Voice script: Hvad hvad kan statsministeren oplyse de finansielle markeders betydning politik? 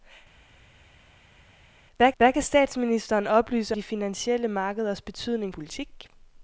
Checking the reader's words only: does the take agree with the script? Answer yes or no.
yes